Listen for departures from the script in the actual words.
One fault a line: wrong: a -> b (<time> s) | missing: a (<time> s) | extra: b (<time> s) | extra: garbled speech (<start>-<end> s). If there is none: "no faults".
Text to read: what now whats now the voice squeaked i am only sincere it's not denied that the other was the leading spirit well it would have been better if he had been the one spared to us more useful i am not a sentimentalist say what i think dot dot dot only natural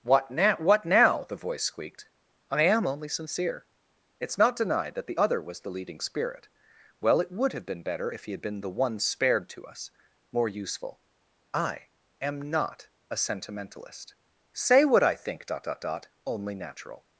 wrong: whats -> what (0.6 s)